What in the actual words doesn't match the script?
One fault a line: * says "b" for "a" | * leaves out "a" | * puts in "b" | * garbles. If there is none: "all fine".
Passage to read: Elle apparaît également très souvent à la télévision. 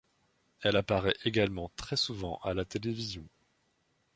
all fine